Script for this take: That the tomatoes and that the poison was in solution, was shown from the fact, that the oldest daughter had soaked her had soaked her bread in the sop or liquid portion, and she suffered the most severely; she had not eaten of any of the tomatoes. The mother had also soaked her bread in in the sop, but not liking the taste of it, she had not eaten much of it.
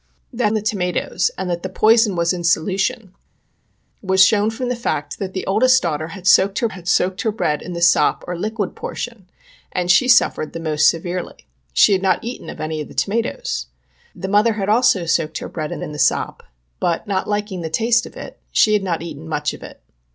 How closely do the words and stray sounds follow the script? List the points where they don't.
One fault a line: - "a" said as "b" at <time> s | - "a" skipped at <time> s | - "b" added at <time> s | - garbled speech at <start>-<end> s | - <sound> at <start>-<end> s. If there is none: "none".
none